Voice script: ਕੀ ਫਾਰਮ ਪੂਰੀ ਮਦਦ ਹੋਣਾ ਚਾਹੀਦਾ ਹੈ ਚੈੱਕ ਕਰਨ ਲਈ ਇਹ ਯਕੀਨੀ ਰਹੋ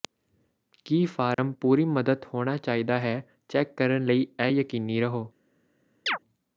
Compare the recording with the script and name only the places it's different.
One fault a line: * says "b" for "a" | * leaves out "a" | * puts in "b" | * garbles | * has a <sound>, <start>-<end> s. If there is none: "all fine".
* has a dropout, 1.3-1.4 s
* has a chirp, 6.1-6.2 s